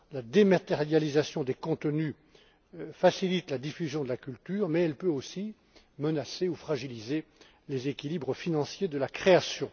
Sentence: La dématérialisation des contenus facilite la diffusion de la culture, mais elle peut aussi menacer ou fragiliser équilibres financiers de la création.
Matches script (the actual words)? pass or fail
fail